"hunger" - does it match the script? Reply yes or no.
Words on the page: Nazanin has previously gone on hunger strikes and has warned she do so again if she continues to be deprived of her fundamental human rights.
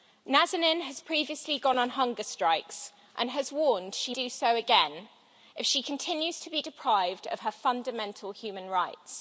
yes